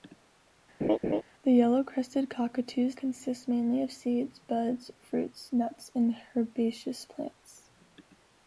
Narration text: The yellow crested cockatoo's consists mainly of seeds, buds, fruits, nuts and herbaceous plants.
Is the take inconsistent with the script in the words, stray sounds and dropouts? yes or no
yes